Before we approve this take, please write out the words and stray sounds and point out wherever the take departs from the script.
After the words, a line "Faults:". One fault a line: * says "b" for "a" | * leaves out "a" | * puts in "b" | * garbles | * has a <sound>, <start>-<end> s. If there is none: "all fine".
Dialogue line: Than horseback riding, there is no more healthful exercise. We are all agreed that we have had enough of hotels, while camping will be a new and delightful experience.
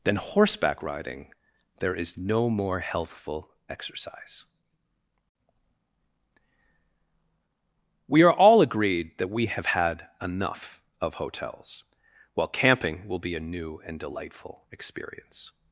Than horseback riding, there is no more healthful exercise. We are all agreed that we have had enough of hotels, while camping will be a new and delightful experience.
Faults:
all fine